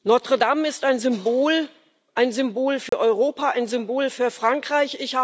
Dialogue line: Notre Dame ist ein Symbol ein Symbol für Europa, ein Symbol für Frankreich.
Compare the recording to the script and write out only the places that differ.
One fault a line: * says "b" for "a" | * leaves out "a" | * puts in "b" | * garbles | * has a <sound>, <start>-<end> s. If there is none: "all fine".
* has a dropout, 2.9-2.9 s